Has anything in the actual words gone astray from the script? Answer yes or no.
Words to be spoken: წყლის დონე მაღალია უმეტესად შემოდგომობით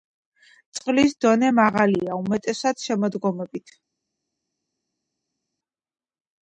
no